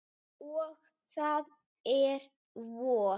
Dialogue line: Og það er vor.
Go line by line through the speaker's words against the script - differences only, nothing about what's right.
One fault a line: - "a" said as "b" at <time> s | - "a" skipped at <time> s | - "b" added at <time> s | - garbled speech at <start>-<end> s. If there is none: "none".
none